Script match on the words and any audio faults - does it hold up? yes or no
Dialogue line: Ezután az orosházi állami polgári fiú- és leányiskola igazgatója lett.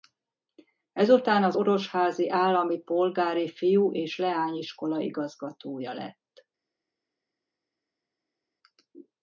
yes